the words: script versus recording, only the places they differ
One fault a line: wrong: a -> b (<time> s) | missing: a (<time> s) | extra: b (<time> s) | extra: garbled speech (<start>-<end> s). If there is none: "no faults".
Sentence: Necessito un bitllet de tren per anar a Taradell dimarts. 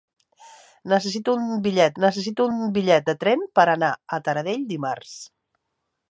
extra: necessito un bitllet (2.0 s)